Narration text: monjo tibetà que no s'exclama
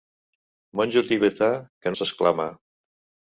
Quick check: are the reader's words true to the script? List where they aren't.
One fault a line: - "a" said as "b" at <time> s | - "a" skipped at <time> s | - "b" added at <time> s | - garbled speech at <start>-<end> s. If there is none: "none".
- "no" skipped at 1.9 s